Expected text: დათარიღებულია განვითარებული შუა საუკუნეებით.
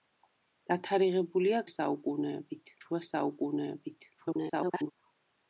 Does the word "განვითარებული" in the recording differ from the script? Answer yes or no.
yes